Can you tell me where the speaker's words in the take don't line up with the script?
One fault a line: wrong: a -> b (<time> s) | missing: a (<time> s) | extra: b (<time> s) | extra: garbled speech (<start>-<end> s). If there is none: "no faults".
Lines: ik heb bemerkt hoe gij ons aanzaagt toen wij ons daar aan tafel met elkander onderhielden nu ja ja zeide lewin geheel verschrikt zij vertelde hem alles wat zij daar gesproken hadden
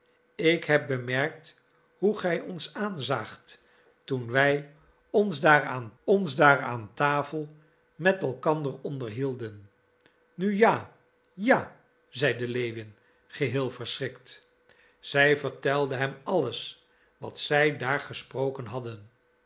extra: ons daar aan (6.0 s)